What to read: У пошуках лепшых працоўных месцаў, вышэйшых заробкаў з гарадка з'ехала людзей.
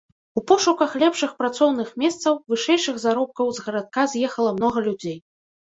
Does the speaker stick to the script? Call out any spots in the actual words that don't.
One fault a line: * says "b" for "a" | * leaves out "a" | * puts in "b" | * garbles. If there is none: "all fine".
* puts in "многа"